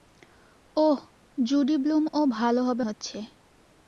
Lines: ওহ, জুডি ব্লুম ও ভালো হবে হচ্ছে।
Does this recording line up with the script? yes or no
yes